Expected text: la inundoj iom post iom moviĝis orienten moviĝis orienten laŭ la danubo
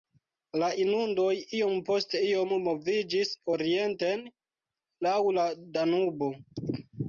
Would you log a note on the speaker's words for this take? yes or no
yes